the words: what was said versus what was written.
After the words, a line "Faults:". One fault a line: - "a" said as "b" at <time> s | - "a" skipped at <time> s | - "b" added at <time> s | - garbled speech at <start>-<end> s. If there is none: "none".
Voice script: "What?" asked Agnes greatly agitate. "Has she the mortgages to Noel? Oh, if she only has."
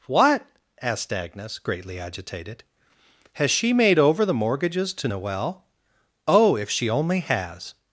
"What?" asked Agnes greatly agitated. "Has she made over the mortgages to Noel? Oh, if she only has."
Faults:
- "agitate" said as "agitated" at 2.0 s
- "made over" added at 3.7 s